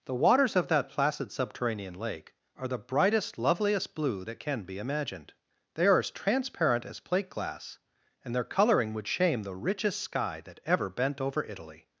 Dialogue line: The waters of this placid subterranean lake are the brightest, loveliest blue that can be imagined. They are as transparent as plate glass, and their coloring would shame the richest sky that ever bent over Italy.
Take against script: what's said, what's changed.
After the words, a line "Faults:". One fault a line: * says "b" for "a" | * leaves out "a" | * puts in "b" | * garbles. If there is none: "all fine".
The waters of that placid subterranean lake are the brightest, loveliest blue that can be imagined. They are as transparent as plate glass, and their coloring would shame the richest sky that ever bent over Italy.
Faults:
* says "that" for "this"